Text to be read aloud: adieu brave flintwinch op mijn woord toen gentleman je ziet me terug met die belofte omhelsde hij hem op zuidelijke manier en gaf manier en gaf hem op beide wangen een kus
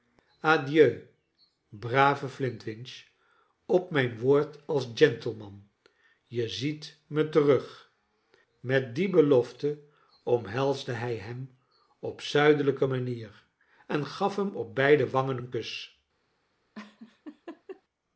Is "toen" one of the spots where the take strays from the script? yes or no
yes